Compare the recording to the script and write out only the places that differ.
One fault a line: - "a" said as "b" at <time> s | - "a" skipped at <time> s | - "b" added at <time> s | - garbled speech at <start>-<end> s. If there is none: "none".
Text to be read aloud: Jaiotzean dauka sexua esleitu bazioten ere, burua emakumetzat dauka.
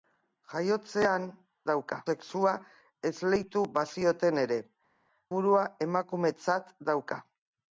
none